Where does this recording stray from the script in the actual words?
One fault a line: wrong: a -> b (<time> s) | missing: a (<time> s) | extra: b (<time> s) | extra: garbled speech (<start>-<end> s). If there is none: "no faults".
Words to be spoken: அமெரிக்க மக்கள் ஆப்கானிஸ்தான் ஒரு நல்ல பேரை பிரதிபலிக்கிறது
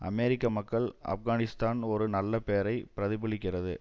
no faults